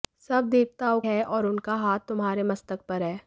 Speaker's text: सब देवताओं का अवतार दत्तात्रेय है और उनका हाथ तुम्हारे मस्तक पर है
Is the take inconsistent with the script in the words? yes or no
yes